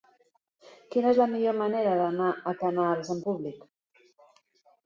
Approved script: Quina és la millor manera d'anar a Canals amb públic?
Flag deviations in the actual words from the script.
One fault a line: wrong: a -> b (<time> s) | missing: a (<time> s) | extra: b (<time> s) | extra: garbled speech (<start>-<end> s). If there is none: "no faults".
no faults